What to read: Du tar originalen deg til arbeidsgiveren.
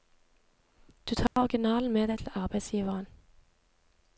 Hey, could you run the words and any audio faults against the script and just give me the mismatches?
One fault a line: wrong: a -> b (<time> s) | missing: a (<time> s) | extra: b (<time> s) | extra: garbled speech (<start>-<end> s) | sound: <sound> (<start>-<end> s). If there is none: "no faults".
sound: dropout (1.3-1.4 s)
extra: med (1.9 s)